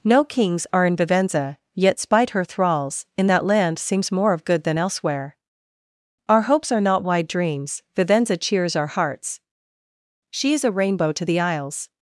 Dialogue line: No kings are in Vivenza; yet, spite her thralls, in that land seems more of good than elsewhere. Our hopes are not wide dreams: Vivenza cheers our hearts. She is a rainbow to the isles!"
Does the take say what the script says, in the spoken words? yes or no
yes